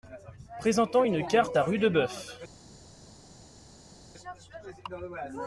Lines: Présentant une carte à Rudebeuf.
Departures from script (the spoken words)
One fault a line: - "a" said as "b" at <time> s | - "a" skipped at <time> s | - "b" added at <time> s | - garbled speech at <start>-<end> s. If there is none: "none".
none